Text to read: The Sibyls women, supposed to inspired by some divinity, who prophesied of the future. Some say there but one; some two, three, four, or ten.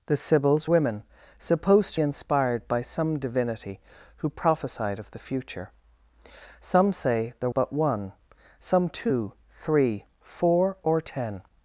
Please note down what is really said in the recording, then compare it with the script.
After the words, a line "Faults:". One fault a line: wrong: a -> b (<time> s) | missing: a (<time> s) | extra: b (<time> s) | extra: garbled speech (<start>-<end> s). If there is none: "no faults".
The Sibyls women, supposed to inspired by some divinity, who prophesied of the future. Some say there but one; some two, three, four, or ten.
Faults:
no faults